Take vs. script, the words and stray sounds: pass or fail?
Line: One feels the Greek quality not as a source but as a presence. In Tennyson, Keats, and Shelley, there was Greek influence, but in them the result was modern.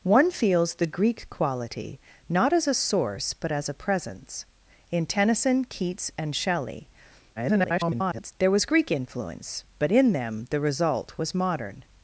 fail